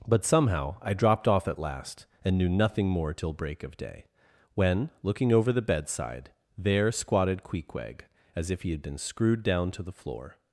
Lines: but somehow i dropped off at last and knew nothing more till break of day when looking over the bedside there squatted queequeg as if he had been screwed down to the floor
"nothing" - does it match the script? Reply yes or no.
yes